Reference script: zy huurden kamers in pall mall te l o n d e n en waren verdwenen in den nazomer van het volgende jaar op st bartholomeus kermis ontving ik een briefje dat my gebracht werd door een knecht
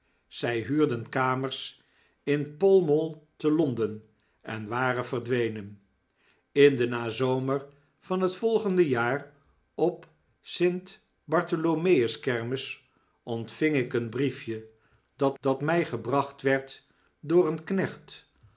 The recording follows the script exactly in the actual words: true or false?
false